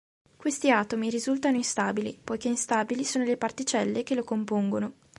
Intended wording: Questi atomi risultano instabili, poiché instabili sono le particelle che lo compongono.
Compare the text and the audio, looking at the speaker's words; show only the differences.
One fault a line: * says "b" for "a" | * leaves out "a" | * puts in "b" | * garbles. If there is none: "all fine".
all fine